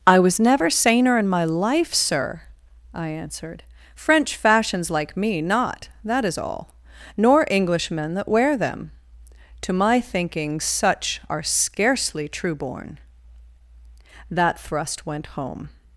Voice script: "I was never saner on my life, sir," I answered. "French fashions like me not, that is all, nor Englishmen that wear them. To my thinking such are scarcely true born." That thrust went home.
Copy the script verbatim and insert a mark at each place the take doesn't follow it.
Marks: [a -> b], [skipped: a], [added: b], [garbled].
"I was never saner [on -> in] my life, sir," I answered. "French fashions like me not, that is all, nor Englishmen that wear them. To my thinking such are scarcely true born." That thrust went home.